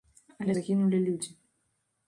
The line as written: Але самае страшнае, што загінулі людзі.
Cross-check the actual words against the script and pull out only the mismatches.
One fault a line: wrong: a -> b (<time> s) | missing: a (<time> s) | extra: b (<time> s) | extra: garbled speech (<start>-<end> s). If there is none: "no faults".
missing: самае страшнае што (0.5 s)